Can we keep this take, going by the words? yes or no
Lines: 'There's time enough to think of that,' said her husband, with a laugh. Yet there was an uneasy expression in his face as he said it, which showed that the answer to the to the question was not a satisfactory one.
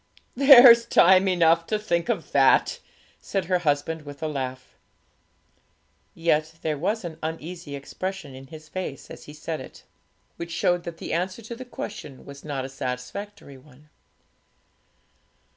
no